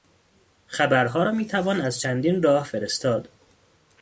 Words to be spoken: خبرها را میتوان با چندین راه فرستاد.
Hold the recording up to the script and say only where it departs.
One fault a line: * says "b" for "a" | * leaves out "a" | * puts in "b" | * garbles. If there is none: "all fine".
* says "از" for "با"